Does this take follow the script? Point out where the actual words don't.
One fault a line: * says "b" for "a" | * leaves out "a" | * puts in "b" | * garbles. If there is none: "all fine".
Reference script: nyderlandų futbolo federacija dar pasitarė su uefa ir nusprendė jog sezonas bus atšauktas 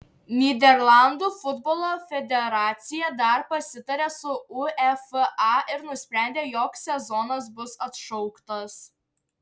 all fine